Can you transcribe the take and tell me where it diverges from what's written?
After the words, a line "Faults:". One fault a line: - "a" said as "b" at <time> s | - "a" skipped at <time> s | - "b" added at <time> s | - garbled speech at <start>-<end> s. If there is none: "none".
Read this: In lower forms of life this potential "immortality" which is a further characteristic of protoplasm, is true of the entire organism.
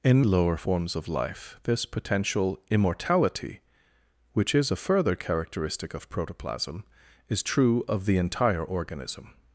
In lower forms of life this potential "immortality" which is a further characteristic of protoplasm, is true of the entire organism.
Faults:
none